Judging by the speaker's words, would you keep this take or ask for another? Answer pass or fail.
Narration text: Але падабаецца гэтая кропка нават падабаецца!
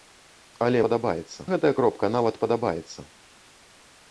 pass